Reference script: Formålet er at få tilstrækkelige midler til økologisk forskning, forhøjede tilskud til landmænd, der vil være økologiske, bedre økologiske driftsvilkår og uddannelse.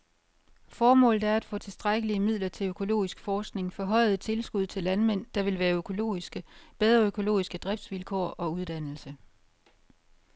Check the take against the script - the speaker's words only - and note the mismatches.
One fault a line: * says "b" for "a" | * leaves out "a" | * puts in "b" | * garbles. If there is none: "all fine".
all fine